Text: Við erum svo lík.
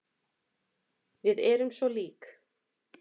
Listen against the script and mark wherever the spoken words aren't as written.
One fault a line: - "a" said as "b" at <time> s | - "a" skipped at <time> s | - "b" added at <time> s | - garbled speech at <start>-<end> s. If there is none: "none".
none